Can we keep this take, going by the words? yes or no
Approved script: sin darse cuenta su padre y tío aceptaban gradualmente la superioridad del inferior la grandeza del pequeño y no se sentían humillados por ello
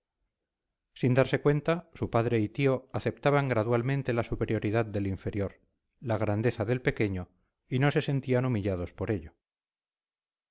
yes